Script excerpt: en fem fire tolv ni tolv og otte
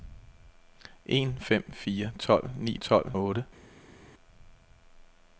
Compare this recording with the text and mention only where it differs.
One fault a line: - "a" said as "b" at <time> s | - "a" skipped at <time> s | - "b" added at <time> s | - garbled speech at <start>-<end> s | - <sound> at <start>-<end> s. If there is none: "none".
none